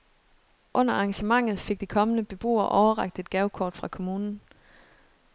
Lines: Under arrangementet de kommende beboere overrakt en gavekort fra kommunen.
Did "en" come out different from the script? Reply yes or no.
yes